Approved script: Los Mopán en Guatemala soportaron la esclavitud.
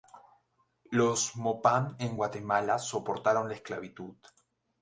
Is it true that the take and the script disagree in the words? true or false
false